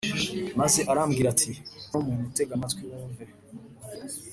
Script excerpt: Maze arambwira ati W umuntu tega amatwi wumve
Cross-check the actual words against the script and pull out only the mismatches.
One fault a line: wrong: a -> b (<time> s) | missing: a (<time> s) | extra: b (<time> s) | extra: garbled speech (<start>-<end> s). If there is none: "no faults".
no faults